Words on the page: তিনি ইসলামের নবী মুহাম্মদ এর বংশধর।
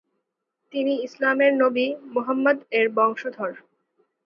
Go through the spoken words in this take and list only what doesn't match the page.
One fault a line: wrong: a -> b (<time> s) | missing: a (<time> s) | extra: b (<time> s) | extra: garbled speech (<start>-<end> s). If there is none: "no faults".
no faults